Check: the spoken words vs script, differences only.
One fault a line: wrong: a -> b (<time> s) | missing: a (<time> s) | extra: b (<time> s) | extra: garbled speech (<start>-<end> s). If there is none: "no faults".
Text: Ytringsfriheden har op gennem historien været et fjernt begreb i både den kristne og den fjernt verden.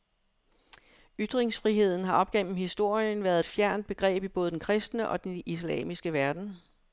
wrong: fjernt -> islamiske (5.5 s)